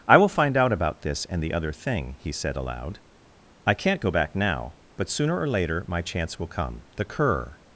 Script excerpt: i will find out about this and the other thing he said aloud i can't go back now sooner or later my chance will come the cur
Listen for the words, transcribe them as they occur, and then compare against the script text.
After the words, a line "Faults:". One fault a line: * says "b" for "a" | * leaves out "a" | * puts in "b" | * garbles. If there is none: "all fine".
i will find out about this and the other thing he said aloud i can't go back now but sooner or later my chance will come the cur
Faults:
* puts in "but"